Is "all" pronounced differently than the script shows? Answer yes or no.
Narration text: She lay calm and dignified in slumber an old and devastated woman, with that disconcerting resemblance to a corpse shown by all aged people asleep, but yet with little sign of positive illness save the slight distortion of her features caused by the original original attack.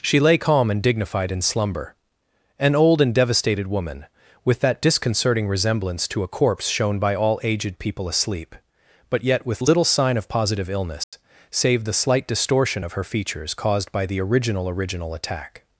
no